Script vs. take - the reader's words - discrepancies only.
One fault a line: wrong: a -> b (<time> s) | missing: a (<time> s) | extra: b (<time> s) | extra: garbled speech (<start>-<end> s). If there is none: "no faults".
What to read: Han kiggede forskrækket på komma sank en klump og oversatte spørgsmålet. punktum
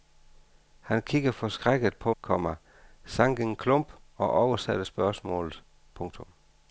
no faults